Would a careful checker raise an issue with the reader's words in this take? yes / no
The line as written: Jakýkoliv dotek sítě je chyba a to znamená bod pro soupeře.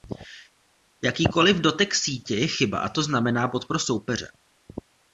no